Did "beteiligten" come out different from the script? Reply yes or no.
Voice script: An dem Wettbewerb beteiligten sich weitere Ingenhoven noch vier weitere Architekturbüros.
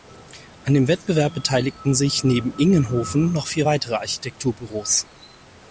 no